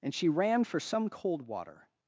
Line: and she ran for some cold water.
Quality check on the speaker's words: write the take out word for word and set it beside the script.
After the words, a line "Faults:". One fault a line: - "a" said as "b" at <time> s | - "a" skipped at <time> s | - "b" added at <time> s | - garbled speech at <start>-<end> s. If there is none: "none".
and she ran for some cold water.
Faults:
none